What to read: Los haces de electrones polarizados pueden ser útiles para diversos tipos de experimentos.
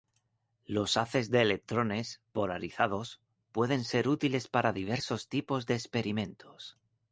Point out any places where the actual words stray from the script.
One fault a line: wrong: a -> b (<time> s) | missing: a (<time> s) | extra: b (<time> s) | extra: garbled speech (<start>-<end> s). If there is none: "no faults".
no faults